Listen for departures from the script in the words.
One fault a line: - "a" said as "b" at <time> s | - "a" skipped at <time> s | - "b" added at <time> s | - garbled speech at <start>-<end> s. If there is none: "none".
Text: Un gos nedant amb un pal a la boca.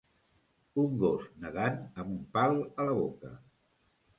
none